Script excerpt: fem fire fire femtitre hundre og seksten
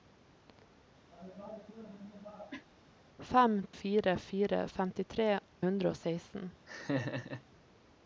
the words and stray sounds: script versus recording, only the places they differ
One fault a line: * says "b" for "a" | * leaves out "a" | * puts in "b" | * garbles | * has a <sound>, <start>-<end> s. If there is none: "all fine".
* has a cough, 1.1-2.7 s
* has a laugh, 6.7-7.4 s